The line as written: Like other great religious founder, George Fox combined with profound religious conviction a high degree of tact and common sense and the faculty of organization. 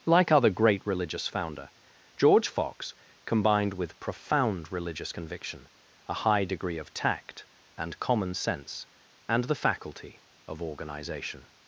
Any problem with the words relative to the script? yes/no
no